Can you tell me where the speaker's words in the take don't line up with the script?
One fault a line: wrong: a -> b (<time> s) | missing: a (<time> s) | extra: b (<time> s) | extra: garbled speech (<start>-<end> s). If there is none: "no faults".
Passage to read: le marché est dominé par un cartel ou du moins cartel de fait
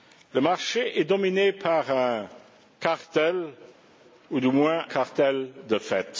no faults